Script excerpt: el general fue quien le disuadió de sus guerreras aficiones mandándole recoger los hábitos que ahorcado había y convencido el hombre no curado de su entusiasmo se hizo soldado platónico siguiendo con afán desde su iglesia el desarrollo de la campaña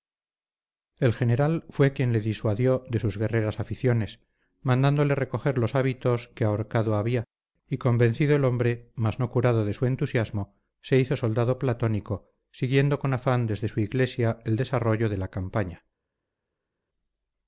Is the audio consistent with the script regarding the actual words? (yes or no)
no